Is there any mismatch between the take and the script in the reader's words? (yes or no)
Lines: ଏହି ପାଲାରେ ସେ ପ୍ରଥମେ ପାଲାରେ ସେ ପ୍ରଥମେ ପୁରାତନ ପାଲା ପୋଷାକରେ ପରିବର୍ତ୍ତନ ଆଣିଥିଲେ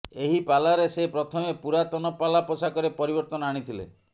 yes